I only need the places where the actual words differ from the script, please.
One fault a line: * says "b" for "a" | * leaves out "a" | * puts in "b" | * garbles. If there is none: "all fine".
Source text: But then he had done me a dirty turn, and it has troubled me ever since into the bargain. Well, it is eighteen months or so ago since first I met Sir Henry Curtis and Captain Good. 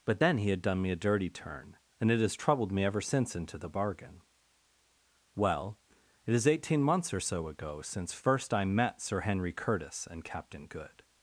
all fine